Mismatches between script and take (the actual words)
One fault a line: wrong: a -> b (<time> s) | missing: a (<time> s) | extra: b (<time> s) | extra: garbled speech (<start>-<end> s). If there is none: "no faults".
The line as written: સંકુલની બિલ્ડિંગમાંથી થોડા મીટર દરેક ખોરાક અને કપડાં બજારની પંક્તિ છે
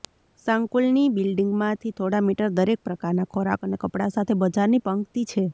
extra: પ્રકારના (2.8 s)
extra: સાથે (4.2 s)